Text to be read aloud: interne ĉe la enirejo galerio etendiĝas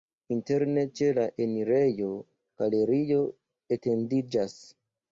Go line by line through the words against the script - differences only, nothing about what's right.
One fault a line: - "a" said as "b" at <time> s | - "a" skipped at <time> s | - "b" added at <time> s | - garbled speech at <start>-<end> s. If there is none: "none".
none